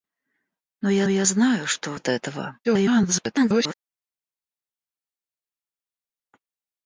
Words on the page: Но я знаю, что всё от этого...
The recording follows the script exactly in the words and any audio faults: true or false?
false